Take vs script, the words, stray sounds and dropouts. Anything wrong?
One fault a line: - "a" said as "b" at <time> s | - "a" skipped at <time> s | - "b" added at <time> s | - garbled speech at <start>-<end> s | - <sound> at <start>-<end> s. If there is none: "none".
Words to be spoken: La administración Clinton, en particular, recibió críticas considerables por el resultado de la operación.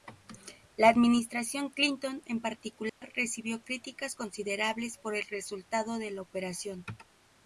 - dropout at 2.9-3.0 s